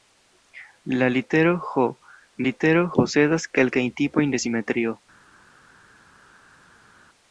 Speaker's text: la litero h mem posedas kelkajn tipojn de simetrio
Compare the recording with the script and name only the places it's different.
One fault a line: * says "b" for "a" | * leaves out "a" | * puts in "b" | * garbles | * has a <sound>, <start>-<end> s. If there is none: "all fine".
* says "litero" for "mem"